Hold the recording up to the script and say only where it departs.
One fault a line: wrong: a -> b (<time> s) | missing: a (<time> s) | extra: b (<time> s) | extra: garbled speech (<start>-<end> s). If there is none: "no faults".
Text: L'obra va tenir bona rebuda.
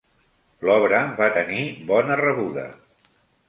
no faults